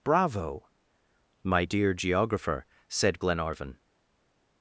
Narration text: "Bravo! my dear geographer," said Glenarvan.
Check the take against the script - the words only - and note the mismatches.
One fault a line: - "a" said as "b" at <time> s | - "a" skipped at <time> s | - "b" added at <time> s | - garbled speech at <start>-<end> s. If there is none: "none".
none